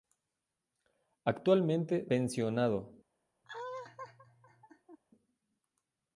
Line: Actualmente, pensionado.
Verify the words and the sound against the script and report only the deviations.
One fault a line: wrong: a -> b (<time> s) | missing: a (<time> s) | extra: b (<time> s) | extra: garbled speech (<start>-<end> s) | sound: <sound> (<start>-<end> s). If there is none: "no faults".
sound: laugh (3.4-5.0 s)